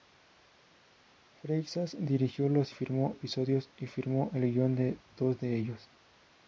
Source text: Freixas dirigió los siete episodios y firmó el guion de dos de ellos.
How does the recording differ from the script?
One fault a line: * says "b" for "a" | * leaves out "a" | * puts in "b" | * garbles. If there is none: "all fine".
* says "firmó" for "siete"